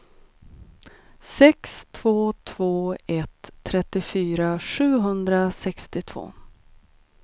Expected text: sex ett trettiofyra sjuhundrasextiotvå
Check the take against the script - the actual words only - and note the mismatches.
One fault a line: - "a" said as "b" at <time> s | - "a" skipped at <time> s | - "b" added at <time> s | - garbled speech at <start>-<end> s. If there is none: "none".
- "två två" added at 1.9 s